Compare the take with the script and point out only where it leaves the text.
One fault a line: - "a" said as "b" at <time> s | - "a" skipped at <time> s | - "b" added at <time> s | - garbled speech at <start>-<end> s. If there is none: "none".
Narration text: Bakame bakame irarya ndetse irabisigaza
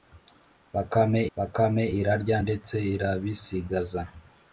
none